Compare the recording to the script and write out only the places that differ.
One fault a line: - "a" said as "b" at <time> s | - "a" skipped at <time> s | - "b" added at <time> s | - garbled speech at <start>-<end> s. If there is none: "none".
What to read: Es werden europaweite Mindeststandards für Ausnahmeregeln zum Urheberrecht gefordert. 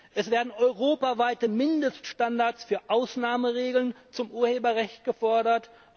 none